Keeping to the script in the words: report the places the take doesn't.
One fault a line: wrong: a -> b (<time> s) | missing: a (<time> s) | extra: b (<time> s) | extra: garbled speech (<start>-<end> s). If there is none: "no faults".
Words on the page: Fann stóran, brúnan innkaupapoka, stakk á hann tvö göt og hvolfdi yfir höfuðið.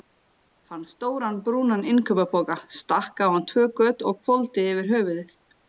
no faults